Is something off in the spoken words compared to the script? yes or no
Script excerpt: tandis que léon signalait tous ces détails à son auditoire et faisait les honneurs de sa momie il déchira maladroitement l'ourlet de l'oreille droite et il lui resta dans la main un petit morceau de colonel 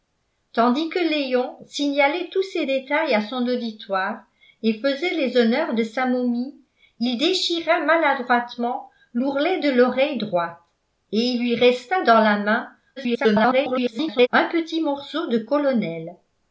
yes